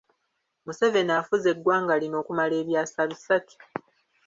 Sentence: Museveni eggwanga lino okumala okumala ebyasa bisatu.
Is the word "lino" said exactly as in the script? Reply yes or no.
yes